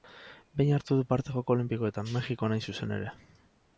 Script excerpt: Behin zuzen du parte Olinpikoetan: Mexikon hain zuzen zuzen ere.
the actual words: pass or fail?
fail